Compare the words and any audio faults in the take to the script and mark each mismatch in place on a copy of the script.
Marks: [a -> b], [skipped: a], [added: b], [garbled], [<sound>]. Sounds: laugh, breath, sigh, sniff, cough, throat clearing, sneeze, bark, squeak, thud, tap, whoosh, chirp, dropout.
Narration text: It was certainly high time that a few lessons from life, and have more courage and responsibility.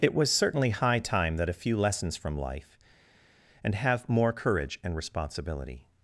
It was certainly high time that a few lessons from life, and have more courage and responsibility.